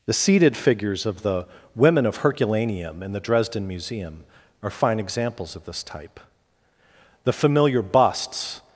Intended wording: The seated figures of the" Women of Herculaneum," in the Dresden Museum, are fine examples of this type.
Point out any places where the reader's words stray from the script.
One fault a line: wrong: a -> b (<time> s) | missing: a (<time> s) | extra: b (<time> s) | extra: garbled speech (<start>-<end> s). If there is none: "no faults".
extra: The familiar busts (7.2 s)